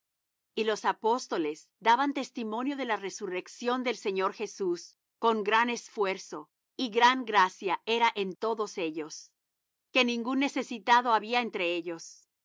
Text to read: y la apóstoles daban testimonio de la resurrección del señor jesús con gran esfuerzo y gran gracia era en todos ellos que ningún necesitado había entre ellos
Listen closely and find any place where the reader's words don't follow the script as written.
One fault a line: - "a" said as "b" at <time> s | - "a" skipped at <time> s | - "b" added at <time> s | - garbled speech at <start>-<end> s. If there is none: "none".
- "la" said as "los" at 0.6 s